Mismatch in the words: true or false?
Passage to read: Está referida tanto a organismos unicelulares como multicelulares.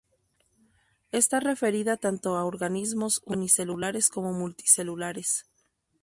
false